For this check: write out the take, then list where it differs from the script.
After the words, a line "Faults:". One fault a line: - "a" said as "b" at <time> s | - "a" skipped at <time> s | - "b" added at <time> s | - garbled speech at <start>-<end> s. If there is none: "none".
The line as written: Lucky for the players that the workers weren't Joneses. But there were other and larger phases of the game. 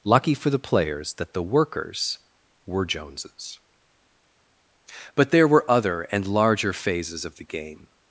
Lucky for the players that the workers were Joneses. But there were other and larger phases of the game.
Faults:
- "weren't" said as "were" at 2.6 s